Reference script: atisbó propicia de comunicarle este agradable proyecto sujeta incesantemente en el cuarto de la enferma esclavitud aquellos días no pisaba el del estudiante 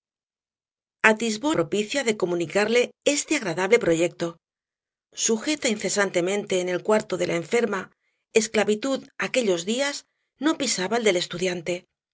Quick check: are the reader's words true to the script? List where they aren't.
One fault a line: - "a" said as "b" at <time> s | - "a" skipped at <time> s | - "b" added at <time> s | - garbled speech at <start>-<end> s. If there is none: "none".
none